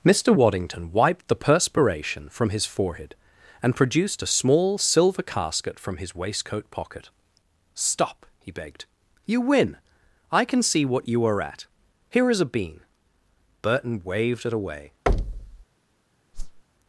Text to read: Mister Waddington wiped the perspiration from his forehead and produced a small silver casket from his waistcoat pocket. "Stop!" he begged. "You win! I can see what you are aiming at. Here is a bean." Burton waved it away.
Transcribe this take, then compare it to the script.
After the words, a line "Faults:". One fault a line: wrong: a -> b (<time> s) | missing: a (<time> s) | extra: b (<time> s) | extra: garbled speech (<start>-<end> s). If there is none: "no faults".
Mister Waddington wiped the perspiration from his forehead and produced a small silver casket from his waistcoat pocket. "Stop!" he begged. "You win! I can see what you are at. Here is a bean." Burton waved it away.
Faults:
missing: aiming (11.4 s)